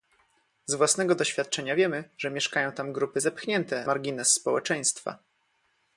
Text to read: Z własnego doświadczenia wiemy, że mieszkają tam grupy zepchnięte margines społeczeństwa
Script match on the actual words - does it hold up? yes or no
yes